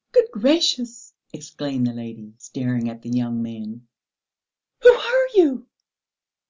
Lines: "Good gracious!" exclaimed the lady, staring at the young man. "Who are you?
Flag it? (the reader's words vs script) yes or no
no